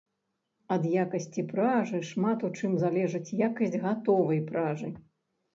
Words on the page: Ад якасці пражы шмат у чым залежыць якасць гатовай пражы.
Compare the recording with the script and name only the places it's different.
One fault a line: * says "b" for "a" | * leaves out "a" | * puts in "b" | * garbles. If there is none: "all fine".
all fine